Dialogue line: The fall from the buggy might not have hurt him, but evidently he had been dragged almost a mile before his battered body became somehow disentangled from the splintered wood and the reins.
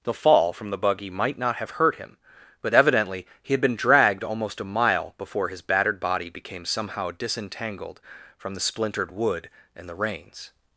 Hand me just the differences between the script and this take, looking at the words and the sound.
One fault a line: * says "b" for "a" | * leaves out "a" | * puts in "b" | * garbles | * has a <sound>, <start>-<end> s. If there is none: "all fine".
all fine